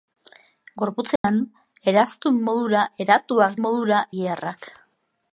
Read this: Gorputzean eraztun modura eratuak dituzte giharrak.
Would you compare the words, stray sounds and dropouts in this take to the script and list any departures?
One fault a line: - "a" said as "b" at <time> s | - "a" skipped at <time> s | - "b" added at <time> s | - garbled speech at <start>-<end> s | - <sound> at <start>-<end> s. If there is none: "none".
- dropout at 1.2-1.2 s
- "dituzte" said as "modura" at 3.6 s